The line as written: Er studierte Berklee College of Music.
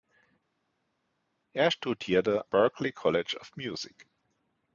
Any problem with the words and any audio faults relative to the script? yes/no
no